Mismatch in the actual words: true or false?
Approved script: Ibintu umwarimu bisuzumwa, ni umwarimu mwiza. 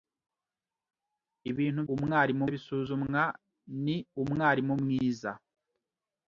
false